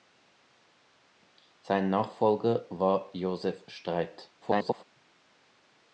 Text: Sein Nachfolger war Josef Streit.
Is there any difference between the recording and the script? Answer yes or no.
yes